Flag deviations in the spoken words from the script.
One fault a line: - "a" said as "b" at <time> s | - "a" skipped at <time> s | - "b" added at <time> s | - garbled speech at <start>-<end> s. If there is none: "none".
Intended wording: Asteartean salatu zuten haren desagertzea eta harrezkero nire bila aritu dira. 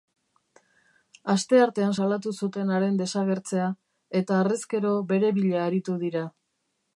- "nire" said as "bere" at 5.1 s